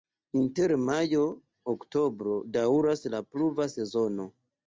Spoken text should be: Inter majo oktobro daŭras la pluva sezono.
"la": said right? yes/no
yes